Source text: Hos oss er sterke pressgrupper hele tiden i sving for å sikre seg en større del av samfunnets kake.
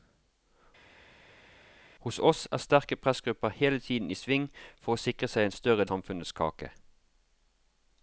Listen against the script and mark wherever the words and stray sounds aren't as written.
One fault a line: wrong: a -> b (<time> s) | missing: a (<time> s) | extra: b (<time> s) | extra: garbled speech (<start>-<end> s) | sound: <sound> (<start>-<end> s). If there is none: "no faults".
missing: del av (5.8 s)